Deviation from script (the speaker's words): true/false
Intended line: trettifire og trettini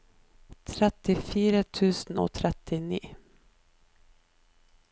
true